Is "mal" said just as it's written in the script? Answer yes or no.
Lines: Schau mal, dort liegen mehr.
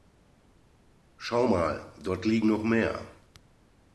yes